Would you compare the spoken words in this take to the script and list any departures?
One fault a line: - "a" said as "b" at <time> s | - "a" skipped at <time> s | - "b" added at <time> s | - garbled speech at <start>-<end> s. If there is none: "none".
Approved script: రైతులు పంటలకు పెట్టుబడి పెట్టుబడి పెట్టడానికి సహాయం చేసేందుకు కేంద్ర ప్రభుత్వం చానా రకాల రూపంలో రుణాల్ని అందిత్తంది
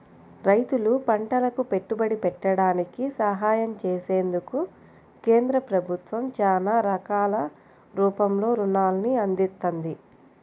- "పెట్టుబడి" skipped at 2.1 s